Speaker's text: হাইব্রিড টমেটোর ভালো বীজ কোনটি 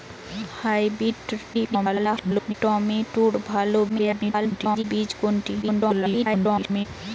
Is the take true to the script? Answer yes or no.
no